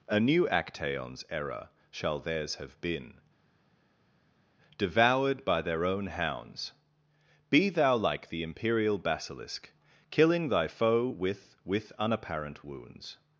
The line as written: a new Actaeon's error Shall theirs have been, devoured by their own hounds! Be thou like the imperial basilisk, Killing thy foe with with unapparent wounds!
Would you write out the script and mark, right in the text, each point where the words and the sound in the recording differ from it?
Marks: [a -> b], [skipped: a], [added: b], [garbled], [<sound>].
a new Actaeon's error Shall theirs have been, devoured by their own hounds! Be thou like the imperial basilisk, Killing thy foe with with unapparent wounds!